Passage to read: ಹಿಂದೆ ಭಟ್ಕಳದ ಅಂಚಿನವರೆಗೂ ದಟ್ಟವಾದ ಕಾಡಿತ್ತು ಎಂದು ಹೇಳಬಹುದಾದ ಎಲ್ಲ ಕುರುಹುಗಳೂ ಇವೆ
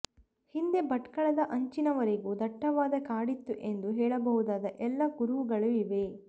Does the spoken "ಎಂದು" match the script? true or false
true